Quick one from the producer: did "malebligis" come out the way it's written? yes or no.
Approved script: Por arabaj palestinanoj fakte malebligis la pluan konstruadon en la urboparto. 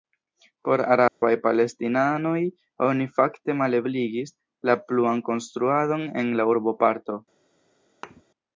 yes